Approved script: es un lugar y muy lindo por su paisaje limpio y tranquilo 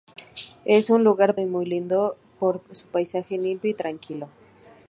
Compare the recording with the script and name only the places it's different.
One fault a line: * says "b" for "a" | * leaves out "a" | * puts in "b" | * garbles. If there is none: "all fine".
all fine